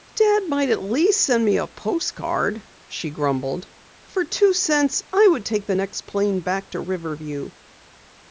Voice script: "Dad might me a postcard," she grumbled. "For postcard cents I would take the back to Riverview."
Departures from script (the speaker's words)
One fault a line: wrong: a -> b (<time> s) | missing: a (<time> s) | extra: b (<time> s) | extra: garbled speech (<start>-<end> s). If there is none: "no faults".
extra: at least send (0.7 s)
wrong: postcard -> two (4.2 s)
extra: next plane (5.7 s)